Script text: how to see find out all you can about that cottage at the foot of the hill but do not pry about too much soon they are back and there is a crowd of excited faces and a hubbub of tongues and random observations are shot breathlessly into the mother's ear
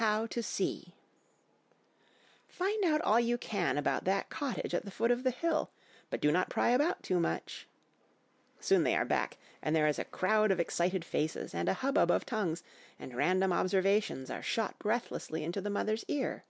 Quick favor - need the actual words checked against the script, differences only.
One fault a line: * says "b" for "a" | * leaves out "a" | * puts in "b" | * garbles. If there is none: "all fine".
all fine